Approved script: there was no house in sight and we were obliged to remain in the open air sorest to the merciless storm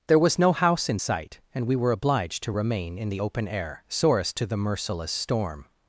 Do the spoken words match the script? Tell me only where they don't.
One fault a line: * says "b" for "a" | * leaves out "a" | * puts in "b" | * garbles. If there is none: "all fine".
all fine